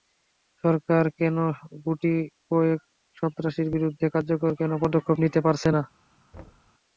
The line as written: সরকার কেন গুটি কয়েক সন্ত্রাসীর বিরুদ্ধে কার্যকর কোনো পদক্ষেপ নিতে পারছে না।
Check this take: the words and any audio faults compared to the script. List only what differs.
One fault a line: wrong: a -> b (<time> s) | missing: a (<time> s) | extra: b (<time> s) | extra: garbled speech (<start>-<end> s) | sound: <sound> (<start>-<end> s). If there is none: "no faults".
sound: thud (6.3-6.7 s)